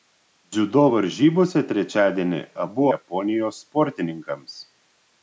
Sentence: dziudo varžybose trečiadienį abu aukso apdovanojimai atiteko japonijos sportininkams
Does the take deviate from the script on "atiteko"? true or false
true